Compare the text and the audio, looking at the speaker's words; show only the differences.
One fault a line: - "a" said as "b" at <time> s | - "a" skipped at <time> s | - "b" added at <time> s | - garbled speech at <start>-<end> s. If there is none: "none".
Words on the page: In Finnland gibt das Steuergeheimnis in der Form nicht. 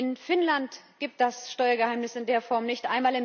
none